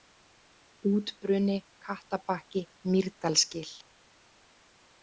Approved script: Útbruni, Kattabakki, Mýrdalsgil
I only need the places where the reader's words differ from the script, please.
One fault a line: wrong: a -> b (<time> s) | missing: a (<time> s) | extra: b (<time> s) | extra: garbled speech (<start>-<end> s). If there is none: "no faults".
no faults